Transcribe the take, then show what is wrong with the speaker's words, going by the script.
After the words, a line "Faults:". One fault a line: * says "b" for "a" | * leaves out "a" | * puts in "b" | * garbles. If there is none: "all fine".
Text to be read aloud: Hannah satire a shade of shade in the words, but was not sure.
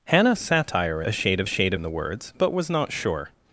Hannah satire a shade of shade in the words, but was not sure.
Faults:
all fine